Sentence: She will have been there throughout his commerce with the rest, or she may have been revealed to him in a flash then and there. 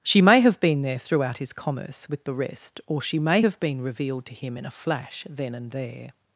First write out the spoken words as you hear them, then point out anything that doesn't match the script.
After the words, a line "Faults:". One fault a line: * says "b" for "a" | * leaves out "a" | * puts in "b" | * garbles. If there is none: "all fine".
She may have been there throughout his commerce with the rest, or she may have been revealed to him in a flash then and there.
Faults:
* says "may" for "will"